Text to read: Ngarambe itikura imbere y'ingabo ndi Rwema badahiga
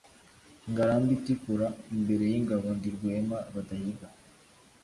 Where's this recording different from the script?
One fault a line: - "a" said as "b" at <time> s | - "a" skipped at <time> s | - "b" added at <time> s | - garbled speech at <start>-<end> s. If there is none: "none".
none